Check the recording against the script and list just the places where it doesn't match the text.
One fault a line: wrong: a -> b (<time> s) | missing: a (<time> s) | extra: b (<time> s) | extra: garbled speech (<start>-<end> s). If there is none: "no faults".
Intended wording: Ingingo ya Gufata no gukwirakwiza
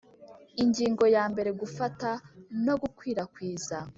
extra: mbere (1.3 s)